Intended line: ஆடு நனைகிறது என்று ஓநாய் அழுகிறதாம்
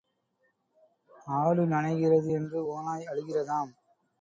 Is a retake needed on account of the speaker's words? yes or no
no